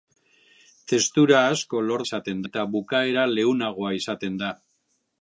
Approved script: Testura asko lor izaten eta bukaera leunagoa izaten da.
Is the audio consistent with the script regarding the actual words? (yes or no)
yes